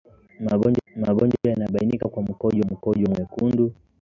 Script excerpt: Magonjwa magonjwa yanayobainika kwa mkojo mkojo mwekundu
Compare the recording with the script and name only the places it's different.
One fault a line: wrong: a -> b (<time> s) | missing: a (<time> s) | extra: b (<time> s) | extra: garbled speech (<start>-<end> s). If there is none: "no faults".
no faults